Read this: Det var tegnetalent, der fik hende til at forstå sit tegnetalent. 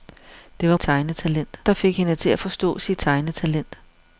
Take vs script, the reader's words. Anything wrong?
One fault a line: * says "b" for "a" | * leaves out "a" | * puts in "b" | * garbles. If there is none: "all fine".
all fine